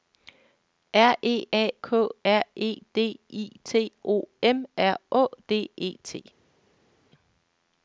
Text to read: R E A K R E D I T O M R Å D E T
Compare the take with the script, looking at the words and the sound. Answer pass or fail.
pass